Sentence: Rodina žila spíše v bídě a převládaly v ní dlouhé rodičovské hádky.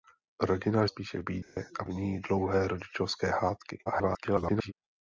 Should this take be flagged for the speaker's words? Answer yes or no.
yes